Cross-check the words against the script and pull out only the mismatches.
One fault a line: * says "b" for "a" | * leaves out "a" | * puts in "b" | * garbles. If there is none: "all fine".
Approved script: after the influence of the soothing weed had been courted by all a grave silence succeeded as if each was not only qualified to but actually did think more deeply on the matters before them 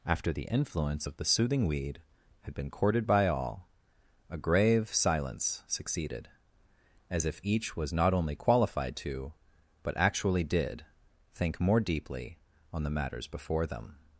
all fine